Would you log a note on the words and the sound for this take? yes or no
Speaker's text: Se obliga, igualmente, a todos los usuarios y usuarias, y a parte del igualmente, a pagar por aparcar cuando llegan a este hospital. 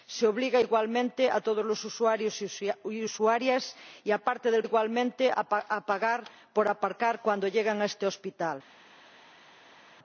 no